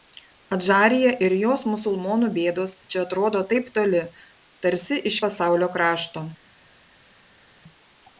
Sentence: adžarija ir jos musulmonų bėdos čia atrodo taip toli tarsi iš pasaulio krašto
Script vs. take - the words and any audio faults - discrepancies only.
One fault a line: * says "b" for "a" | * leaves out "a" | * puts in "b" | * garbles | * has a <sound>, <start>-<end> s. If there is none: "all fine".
all fine